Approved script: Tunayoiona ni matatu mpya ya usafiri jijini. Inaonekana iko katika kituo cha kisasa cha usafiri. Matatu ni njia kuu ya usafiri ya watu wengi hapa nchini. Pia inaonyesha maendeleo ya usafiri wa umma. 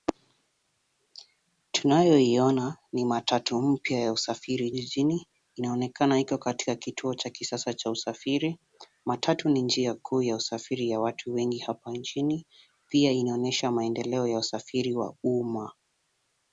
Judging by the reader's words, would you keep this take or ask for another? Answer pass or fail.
pass